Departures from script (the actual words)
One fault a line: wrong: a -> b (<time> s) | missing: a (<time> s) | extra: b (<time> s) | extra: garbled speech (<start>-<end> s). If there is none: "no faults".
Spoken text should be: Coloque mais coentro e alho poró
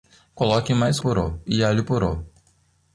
wrong: coentro -> poró (1.0 s)